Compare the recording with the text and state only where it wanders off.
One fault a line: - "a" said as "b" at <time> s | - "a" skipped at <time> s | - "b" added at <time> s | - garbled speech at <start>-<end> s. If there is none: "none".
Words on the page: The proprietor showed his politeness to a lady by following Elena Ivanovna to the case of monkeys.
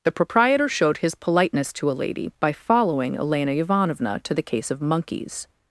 none